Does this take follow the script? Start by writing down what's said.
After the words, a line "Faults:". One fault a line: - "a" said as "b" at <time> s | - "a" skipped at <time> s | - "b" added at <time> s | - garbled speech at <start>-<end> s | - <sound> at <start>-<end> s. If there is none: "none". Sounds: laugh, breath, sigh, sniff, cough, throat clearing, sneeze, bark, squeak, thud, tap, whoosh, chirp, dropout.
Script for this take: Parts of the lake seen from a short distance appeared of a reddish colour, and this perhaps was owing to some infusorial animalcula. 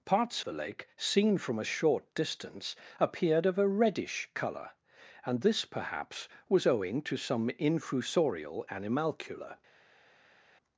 Parts the lake seen from a short distance appeared of a reddish colour, and this perhaps was owing to some infusorial animalcula.
Faults:
- "of" skipped at 0.4 s